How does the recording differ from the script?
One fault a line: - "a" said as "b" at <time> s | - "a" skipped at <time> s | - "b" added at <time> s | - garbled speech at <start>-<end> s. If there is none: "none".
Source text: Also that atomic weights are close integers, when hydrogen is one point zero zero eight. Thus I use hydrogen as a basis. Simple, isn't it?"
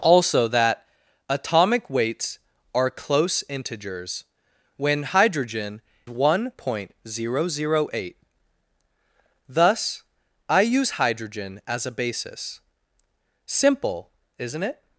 - "is" skipped at 5.8 s